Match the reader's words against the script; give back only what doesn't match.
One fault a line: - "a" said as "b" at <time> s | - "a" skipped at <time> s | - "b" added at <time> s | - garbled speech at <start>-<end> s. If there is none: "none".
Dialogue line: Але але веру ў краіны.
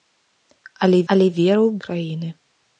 none